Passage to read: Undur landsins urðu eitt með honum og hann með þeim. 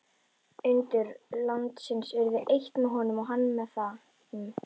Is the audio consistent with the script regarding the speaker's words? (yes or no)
yes